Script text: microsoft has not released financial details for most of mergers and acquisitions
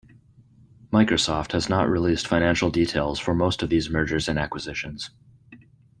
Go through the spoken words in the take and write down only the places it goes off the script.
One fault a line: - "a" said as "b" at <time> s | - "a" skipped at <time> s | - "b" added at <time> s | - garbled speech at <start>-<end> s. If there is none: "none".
- "these" added at 3.7 s